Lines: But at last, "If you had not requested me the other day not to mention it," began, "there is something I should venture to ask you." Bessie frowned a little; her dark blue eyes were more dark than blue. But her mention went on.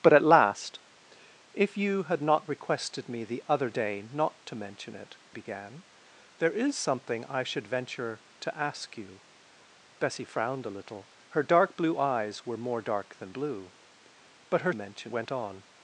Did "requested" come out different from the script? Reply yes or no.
no